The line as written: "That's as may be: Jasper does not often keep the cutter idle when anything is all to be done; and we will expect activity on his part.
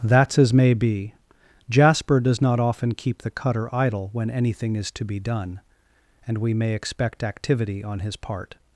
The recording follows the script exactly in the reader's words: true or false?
false